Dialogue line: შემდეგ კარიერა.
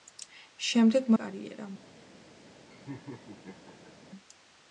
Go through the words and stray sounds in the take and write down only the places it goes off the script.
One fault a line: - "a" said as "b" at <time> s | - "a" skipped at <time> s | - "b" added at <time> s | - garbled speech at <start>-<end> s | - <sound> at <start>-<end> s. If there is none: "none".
- laugh at 2.7-3.9 s